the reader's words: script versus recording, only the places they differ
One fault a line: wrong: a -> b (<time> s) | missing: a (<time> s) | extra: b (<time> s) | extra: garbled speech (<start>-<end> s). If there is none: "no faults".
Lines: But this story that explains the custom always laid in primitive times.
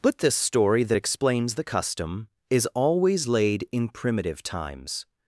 extra: is (2.5 s)